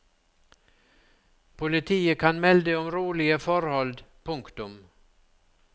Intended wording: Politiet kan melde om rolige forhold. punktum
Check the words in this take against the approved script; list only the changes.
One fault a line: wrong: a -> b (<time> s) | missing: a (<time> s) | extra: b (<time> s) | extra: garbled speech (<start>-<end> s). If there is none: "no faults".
no faults